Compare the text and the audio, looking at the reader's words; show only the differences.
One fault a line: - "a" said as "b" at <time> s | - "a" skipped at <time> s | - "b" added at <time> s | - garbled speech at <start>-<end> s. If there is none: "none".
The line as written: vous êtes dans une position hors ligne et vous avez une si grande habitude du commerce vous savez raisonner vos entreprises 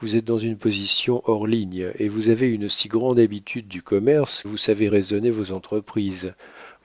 none